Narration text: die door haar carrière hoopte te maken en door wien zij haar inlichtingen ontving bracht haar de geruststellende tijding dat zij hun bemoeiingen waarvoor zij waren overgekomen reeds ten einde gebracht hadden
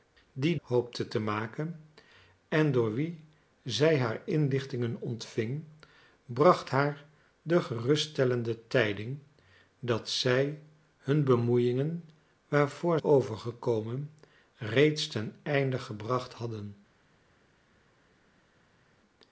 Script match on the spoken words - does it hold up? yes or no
no